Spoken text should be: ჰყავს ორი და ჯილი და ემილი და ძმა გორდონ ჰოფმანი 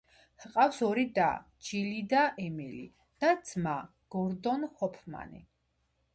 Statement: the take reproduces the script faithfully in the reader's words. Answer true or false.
true